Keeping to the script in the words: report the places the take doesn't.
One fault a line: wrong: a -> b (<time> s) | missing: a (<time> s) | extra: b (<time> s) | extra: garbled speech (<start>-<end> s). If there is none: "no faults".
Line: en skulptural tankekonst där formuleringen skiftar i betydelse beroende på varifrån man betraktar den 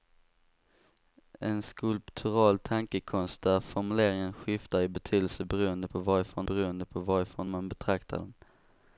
extra: beroende på varifrån (6.4 s)